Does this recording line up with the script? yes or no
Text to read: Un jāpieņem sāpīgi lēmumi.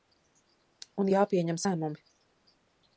no